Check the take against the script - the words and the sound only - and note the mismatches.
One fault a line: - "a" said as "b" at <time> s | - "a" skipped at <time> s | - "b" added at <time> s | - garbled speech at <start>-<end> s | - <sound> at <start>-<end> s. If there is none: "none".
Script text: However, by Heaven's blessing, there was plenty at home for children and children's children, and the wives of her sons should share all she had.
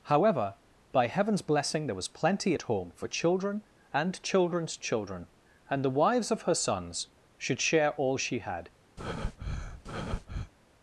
- breath at 9.0-10.5 s